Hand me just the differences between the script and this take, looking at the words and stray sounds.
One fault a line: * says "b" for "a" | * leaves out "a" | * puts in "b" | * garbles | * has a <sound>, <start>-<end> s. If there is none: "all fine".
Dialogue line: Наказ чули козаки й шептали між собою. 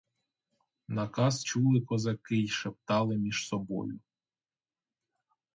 all fine